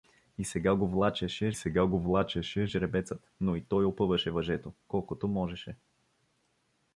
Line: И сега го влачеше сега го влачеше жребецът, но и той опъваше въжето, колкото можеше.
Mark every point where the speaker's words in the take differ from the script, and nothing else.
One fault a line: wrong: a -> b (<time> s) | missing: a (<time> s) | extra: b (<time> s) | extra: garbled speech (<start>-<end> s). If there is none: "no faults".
no faults